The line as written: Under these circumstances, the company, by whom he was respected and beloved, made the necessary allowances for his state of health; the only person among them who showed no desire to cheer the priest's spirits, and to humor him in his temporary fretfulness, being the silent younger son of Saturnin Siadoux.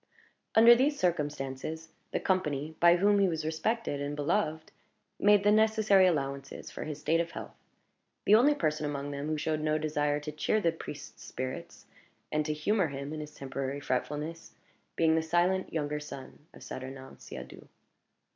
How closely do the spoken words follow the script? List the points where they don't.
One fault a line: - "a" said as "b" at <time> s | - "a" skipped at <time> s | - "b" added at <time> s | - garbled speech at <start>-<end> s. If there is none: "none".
none